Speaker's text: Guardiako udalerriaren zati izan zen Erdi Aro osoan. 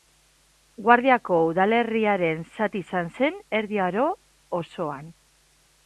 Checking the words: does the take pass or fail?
pass